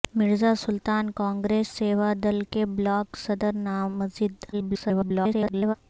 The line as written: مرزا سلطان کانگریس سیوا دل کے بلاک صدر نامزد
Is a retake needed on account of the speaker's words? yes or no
yes